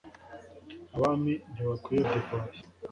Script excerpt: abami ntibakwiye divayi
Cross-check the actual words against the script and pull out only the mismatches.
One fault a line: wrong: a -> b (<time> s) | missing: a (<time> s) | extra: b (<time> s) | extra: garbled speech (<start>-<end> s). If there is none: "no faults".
no faults